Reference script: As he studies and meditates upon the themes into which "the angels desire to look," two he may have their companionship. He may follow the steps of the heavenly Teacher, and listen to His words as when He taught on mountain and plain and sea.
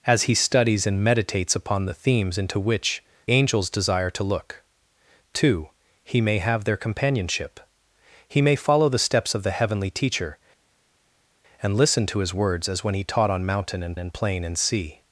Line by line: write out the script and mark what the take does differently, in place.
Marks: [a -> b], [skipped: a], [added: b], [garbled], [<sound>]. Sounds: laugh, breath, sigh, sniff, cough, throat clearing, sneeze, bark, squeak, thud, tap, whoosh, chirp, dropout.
As he studies and meditates upon the themes into which [skipped: "the] angels desire to look," two he may have their companionship. He may follow the steps of the heavenly Teacher, and listen to His words as when He taught on mountain and [added: and] plain and sea.